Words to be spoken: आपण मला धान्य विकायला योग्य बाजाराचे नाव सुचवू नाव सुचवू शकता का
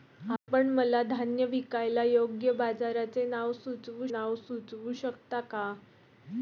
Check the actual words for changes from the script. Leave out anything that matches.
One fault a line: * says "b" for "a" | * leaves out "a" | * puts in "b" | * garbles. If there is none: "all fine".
all fine